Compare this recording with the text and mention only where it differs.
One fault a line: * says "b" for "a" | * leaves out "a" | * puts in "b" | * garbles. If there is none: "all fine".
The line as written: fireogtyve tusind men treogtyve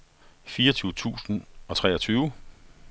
* says "og" for "men"